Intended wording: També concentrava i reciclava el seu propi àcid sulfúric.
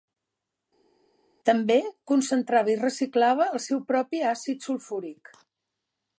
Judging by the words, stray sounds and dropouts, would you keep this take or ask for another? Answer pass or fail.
pass